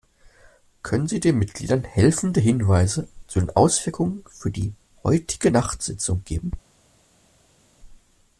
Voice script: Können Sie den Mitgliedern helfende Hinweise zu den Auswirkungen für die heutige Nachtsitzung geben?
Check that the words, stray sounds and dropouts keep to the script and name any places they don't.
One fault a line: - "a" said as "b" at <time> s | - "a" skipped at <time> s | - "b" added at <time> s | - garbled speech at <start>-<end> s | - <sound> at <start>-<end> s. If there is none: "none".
none